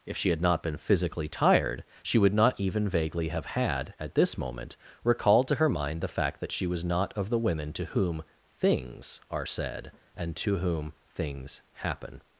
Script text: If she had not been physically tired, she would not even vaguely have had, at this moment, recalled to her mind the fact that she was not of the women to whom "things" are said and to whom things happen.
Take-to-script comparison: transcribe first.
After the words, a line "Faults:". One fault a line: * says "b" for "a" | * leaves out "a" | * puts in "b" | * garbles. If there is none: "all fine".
If she had not been physically tired, she would not even vaguely have had, at this moment, recalled to her mind the fact that she was not of the women to whom "things" are said and to whom things happen.
Faults:
all fine